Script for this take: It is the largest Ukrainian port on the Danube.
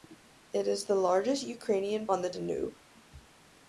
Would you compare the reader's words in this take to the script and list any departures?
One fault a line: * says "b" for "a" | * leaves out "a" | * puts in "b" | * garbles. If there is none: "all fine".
* leaves out "port"